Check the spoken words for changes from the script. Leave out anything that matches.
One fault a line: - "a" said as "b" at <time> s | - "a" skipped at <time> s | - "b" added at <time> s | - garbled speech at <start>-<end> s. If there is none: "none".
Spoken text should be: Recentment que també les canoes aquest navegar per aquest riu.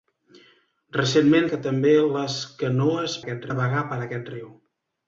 none